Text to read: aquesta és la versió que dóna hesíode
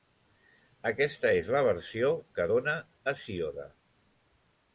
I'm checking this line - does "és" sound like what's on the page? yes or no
yes